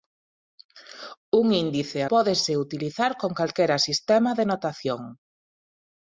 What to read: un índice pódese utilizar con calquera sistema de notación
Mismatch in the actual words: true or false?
false